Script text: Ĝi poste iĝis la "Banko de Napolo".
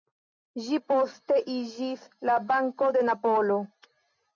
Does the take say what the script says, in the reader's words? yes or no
yes